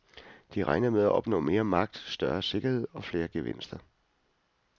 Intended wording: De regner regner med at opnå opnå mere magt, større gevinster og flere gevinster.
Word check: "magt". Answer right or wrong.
right